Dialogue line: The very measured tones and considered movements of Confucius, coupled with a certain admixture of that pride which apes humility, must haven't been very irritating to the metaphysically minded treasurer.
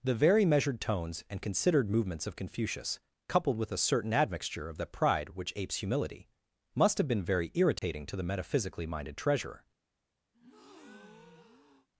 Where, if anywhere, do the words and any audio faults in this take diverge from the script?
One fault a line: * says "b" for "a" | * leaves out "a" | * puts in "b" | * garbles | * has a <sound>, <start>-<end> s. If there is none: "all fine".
* says "have" for "haven't"
* has a dropout, 7.8-7.8 s
* has a breath, 10.3-11.9 s